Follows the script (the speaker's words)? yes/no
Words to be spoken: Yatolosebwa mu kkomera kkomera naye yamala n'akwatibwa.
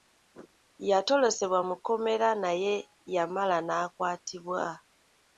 no